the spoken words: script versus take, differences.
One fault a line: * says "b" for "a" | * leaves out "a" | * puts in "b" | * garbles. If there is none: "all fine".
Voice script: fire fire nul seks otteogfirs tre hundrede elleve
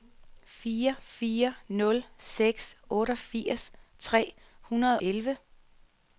all fine